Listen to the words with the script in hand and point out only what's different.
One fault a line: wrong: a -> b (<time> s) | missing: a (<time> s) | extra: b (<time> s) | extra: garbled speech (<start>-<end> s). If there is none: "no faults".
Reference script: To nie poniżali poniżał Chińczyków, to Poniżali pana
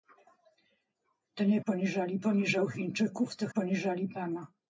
no faults